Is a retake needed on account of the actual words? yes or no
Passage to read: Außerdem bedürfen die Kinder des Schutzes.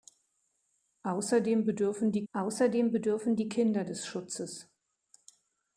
yes